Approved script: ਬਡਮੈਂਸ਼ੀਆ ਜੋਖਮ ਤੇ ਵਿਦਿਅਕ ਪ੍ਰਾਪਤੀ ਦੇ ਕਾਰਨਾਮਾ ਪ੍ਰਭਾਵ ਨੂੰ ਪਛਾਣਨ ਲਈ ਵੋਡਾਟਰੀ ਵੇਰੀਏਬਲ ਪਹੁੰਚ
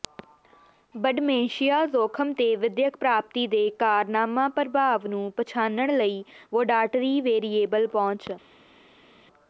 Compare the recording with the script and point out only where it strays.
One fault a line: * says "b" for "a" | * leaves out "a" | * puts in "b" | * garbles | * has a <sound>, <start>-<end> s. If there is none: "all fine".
all fine